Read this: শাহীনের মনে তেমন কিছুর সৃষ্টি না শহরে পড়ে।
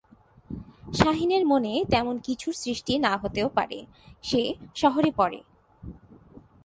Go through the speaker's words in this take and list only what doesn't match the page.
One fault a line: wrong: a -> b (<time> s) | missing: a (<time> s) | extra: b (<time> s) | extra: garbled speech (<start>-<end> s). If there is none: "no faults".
extra: হতেও পারে সে (3.2 s)